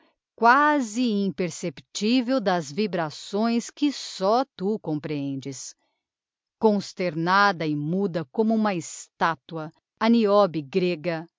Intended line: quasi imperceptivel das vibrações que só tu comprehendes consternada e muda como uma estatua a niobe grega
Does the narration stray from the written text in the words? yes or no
no